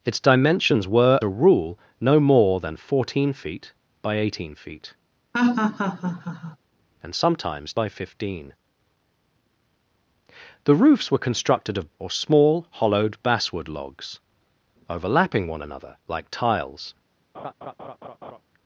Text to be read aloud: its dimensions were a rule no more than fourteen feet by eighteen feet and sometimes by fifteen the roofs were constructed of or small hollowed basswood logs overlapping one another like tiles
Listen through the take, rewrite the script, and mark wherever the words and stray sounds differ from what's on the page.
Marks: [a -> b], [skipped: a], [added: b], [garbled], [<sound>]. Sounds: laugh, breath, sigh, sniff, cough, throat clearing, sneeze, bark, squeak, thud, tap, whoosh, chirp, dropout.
its dimensions were a rule no more than fourteen feet by eighteen feet [laugh] and sometimes by fifteen the roofs were constructed of or small hollowed basswood logs overlapping one another like tiles [laugh]